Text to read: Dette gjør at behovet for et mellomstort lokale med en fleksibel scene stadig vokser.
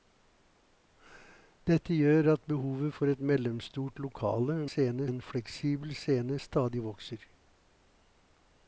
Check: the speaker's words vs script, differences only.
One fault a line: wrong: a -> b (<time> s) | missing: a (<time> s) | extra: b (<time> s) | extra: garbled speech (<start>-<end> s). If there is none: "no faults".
wrong: med -> scene (4.6 s)